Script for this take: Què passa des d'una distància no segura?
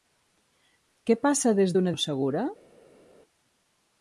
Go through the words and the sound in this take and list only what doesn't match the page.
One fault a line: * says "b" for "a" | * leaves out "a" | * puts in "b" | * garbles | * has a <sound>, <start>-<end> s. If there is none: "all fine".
* leaves out "distància"